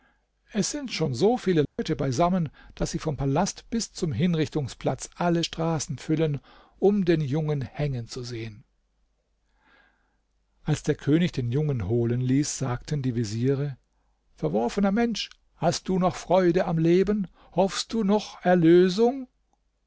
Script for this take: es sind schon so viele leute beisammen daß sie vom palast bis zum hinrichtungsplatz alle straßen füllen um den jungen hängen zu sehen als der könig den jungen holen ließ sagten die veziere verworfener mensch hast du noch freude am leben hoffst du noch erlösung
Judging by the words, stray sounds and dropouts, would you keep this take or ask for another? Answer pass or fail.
fail